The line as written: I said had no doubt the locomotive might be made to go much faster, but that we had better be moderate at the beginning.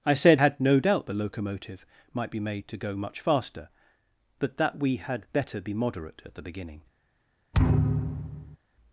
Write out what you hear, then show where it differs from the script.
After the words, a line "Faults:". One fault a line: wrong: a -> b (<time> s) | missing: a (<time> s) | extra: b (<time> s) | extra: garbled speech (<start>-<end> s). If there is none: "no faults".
I said had no doubt the locomotive might be made to go much faster, but that we had better be moderate at the beginning.
Faults:
no faults